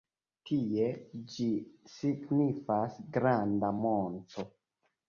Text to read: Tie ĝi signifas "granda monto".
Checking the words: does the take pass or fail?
pass